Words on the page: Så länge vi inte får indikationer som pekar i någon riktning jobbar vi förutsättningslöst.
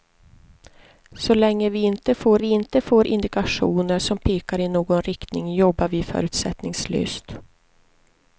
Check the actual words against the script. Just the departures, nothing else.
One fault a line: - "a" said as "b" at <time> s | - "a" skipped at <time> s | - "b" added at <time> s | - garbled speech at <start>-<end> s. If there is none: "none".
- "vi inte får" added at 2.4 s